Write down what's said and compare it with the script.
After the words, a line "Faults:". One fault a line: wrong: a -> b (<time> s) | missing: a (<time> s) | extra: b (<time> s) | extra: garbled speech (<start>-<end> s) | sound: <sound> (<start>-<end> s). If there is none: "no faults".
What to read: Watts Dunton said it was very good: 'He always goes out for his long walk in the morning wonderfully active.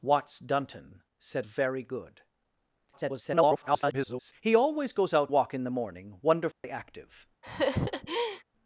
Watts Dunton said very good: [garbled] 'He always goes out walk in the morning wonderfully active.
Faults:
missing: it was (1.4 s)
extra: garbled speech (2.9-4.3 s)
missing: for his long (5.3 s)
sound: dropout (6.5-6.6 s)
sound: laugh (7.4-8.4 s)